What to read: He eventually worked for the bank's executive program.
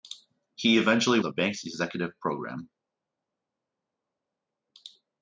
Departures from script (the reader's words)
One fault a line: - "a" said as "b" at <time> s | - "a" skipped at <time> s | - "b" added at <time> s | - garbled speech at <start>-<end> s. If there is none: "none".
- "worked for" skipped at 1.2 s